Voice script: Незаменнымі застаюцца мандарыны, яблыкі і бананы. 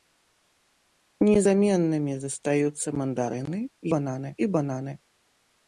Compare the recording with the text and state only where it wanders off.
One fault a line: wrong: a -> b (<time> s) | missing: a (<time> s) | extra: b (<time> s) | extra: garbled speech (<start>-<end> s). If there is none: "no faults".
wrong: яблыкі -> бананы (4.0 s)